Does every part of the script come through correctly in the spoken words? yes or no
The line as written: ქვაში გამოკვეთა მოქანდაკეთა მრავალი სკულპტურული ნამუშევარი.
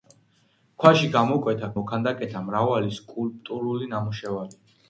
yes